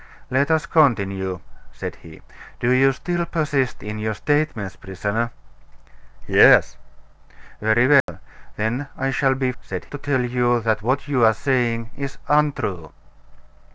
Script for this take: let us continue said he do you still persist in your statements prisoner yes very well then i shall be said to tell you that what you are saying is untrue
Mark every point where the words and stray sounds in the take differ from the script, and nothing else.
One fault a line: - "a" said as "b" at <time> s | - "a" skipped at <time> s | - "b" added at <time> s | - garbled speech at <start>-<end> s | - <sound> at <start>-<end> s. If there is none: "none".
- dropout at 8.0-8.1 s